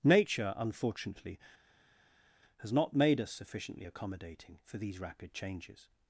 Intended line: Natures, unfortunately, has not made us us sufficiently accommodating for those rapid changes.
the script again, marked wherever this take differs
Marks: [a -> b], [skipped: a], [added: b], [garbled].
[Natures, -> Nature] unfortunately, has not made us [skipped: us] sufficiently accommodating for [those -> these] rapid changes.